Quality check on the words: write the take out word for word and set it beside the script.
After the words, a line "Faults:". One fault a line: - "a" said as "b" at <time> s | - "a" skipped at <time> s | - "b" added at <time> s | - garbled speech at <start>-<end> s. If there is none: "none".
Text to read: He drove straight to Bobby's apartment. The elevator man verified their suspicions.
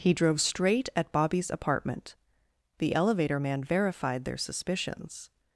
He drove straight at Bobby's apartment. The elevator man verified their suspicions.
Faults:
- "to" said as "at" at 0.9 s